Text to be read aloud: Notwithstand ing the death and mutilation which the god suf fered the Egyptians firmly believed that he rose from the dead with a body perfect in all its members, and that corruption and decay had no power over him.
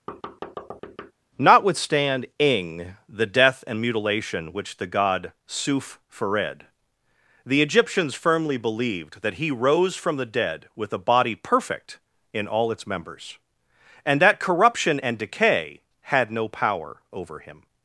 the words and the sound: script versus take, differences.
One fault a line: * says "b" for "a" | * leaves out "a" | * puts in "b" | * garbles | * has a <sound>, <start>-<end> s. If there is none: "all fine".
* has a thud, 0.1-1.1 s